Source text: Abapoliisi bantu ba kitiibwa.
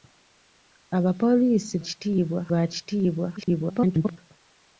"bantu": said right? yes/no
no